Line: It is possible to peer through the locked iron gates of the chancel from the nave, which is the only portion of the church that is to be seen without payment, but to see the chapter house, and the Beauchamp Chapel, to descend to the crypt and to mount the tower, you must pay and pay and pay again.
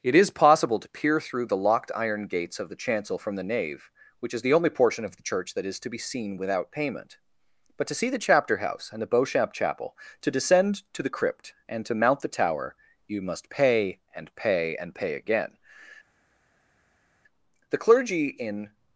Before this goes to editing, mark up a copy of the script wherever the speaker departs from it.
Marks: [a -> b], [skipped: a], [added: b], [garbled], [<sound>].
It is possible to peer through the locked iron gates of the chancel from the nave, which is the only portion of the church that is to be seen without payment, but to see the chapter house, and the Beauchamp Chapel, to descend to the crypt and to mount the tower, you must pay and pay and pay again. [added: The clergy in]